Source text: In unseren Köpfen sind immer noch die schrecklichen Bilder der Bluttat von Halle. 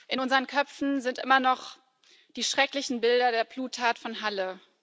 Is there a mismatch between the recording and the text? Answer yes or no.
no